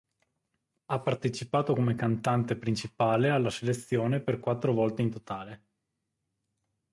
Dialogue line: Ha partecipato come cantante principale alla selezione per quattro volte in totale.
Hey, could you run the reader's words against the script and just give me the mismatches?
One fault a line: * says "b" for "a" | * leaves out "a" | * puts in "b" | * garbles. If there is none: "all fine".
all fine